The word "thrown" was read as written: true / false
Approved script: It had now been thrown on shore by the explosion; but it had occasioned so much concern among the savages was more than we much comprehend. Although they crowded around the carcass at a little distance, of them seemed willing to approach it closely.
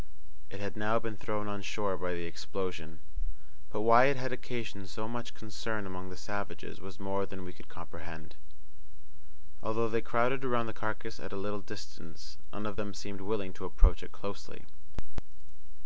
true